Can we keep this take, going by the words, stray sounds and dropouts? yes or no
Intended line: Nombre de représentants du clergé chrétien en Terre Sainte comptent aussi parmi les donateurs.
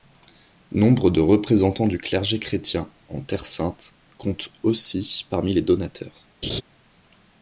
no